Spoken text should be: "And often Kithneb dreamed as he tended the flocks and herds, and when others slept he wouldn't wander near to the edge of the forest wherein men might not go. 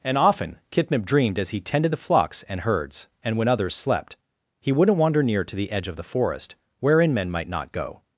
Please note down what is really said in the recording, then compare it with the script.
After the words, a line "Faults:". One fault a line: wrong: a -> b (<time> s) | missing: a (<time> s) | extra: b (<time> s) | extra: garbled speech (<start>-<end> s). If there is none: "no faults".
"And often Kithneb dreamed as he tended the flocks and herds, and when others slept he wouldn't wander near to the edge of the forest wherein men might not go.
Faults:
no faults